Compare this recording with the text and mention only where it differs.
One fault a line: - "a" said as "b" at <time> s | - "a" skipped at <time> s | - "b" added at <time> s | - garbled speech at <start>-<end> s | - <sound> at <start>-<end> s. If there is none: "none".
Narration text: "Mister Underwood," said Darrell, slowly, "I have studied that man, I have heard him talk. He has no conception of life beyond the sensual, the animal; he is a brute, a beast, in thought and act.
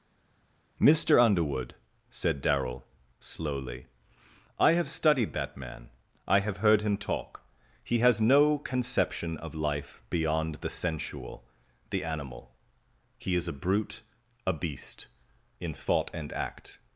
none